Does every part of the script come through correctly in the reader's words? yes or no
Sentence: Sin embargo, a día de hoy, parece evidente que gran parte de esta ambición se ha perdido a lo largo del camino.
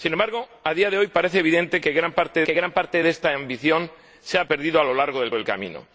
no